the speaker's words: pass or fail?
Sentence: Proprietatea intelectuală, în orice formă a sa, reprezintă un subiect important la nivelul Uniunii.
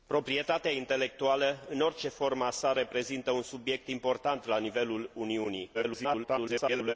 fail